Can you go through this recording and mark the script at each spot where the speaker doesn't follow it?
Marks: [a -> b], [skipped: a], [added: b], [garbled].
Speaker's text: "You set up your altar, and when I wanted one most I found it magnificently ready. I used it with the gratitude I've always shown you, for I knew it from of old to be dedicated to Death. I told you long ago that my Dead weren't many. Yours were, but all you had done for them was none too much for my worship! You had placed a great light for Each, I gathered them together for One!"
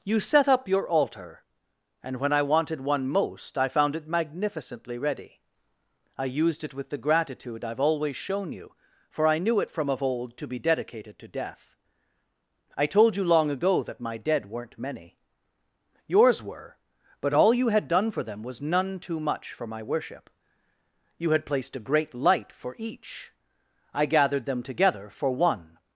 "You set up your altar, and when I wanted one most I found it magnificently ready. I used it with the gratitude I've always shown you, for I knew it from of old to be dedicated to Death. I told you long ago that my Dead weren't many. Yours were, but all you had done for them was none too much for my worship! You had placed a great light for Each, I gathered them together for One!"